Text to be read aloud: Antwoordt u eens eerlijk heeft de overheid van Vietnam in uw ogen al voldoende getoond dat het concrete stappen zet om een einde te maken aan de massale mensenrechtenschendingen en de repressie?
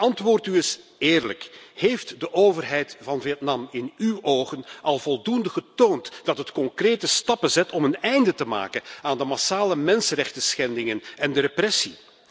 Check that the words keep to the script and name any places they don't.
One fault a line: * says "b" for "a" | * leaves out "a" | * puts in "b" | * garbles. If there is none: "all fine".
all fine